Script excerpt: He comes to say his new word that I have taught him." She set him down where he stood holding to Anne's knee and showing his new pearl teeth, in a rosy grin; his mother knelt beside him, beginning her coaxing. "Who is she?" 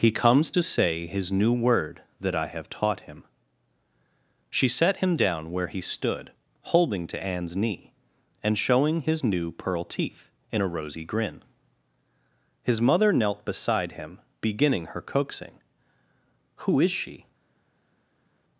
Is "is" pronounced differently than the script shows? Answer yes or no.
no